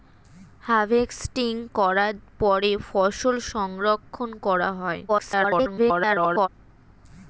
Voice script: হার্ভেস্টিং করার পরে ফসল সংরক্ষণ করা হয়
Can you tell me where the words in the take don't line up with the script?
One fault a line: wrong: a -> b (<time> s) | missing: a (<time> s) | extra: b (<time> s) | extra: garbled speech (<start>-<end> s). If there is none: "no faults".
extra: garbled speech (5.1-6.5 s)